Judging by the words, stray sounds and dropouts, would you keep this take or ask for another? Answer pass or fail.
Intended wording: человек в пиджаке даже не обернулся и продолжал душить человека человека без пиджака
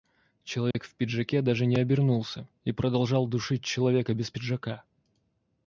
fail